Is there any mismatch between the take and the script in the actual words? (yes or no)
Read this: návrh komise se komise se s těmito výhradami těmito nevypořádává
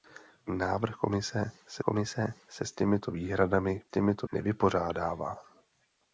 no